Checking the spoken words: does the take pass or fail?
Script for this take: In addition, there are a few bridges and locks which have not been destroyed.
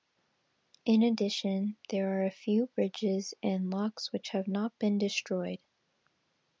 pass